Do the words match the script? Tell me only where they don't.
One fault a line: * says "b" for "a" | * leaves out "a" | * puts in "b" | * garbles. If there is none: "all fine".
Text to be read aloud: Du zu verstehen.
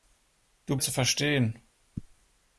all fine